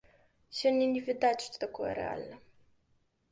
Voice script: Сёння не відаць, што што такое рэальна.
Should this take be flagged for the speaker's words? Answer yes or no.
yes